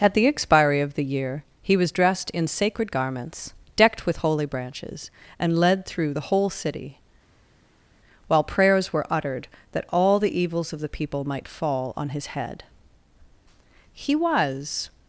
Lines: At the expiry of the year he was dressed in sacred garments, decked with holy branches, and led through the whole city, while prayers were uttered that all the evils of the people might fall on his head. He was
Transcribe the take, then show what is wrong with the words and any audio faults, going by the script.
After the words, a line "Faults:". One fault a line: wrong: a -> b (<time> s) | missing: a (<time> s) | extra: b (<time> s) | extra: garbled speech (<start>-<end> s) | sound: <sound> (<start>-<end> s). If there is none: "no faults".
At the expiry of the year he was dressed in sacred garments, decked with holy branches, and led through the whole city, while prayers were uttered that all the evils of the people might fall on his head. He was
Faults:
no faults